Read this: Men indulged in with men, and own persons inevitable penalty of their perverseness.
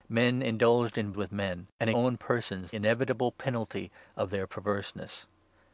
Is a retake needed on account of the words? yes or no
no